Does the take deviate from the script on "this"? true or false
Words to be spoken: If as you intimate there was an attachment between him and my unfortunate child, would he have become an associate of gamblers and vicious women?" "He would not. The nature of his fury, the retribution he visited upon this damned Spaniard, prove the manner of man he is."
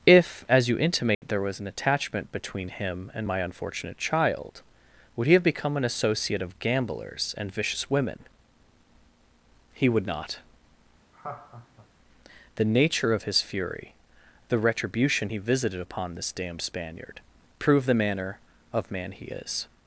false